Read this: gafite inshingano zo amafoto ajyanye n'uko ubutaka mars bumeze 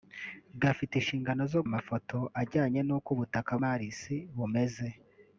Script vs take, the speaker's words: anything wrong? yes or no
no